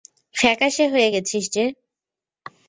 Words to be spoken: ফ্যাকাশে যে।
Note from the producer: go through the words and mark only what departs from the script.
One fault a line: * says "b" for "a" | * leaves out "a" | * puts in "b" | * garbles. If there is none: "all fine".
* puts in "হয়ে গেছিস"